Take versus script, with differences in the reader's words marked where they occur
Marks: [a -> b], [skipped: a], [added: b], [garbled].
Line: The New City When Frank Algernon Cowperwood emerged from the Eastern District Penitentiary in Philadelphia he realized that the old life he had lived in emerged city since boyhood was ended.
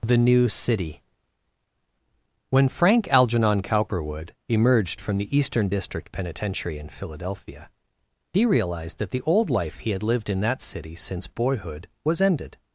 The New City When Frank Algernon Cowperwood emerged from the Eastern District Penitentiary in Philadelphia he realized that the old life he had lived in [emerged -> that] city since boyhood was ended.